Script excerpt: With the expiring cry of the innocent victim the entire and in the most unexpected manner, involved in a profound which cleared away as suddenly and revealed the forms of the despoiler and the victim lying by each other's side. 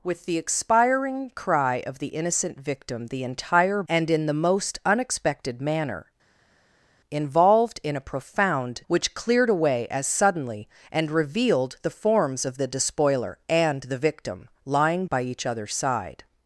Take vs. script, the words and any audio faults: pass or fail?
pass